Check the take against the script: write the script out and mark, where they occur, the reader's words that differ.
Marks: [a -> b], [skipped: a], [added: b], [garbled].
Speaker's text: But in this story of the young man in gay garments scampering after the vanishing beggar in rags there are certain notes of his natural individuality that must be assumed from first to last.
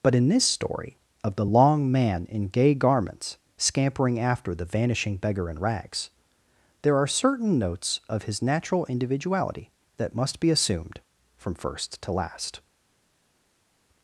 But in this story of the [young -> long] man in gay garments scampering after the vanishing beggar in rags there are certain notes of his natural individuality that must be assumed from first to last.